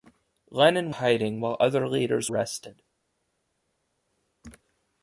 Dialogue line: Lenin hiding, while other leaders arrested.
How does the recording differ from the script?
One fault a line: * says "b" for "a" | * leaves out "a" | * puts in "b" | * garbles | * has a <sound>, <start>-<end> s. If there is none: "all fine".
all fine